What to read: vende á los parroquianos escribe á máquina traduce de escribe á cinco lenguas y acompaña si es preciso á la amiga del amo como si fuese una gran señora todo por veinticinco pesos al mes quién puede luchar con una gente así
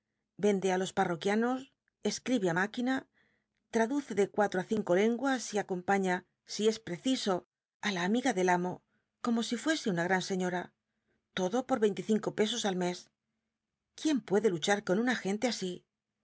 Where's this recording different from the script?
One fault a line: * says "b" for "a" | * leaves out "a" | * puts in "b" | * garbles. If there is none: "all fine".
* says "cuatro" for "escribe"